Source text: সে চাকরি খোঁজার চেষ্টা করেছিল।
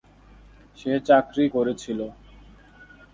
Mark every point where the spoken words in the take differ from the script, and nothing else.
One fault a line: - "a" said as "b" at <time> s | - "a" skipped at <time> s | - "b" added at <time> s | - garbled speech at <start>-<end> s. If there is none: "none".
- "খোঁজার চেষ্টা" skipped at 1.4 s